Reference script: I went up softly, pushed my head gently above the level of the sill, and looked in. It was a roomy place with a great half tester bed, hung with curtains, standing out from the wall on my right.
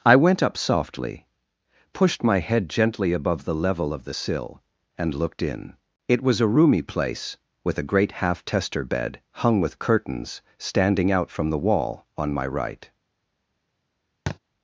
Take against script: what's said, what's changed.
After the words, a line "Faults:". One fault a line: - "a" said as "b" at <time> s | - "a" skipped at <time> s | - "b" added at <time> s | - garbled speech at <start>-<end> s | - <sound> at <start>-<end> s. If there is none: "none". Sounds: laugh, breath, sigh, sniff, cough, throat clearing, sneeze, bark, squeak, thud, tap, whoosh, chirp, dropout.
I went up softly, pushed my head gently above the level of the sill, and looked in. It was a roomy place with a great half tester bed, hung with curtains, standing out from the wall on my right.
Faults:
- thud at 14.3-14.4 s